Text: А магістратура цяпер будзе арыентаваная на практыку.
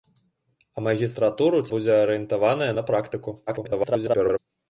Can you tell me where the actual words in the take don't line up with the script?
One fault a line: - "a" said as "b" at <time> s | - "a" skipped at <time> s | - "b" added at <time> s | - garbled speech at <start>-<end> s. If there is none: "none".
- "цяпер" skipped at 1.6 s
- garbled speech at 3.5-4.4 s